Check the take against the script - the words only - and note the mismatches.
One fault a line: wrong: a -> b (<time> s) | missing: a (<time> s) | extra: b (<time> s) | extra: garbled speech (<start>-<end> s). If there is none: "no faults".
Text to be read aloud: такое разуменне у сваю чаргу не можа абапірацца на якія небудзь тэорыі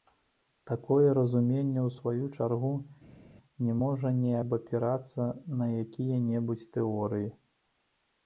extra: не (4.2 s)